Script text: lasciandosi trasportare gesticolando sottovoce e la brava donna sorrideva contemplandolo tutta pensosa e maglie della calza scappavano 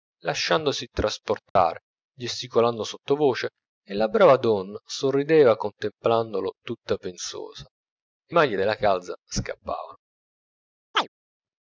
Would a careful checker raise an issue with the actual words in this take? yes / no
no